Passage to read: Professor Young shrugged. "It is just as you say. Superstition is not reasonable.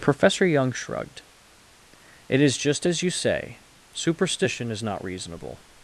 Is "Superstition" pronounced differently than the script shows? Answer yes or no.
no